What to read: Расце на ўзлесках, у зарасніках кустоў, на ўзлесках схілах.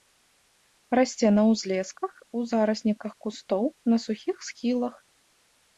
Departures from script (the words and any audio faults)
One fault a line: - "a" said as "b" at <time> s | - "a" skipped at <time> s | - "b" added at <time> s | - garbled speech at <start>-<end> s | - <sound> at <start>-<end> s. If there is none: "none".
- "ўзлесках" said as "сухіх" at 4.1 s